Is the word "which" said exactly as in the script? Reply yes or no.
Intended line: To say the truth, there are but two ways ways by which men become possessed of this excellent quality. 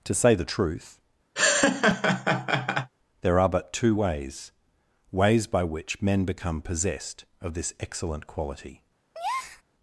yes